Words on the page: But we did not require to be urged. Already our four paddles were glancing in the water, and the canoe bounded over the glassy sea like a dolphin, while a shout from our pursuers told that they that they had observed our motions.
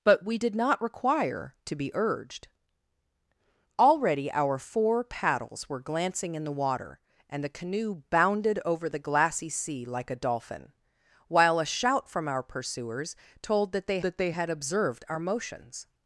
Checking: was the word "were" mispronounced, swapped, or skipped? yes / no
no